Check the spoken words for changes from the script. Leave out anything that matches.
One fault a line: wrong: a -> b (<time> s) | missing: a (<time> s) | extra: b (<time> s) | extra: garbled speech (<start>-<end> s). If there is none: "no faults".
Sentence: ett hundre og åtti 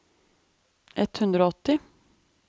no faults